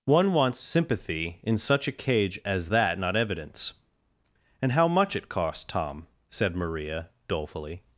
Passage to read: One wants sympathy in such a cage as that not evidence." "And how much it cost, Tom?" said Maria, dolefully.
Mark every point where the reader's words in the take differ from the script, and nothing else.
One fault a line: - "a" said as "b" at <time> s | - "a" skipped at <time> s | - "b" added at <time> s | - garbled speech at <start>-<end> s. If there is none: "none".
none